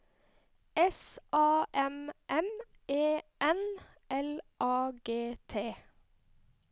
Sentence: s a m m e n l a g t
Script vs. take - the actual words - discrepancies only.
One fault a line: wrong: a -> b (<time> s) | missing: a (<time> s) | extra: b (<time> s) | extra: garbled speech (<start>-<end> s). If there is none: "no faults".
no faults